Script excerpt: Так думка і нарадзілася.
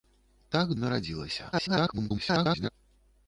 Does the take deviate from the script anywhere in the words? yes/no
yes